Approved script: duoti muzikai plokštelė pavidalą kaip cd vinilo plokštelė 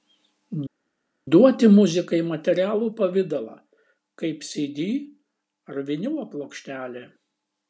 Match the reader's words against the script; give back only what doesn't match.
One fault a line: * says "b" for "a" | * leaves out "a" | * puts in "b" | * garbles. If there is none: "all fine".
* says "materialų" for "plokštelė"
* puts in "ar"